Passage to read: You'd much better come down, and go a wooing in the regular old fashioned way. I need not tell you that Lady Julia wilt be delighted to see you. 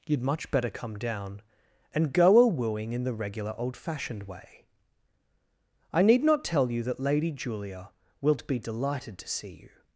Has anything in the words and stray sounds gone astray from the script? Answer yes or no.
no